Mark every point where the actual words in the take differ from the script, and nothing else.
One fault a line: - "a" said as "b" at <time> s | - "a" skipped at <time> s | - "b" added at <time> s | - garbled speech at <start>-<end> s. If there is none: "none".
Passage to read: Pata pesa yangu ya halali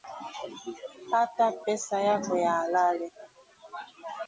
- "yangu" said as "yako" at 2.0 s